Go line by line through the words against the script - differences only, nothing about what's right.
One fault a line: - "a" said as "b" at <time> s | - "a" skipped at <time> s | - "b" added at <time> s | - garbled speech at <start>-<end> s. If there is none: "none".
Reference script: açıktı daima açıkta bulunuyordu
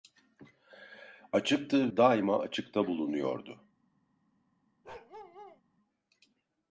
none